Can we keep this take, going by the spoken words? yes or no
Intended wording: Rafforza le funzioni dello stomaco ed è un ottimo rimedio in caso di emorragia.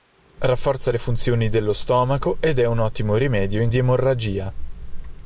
no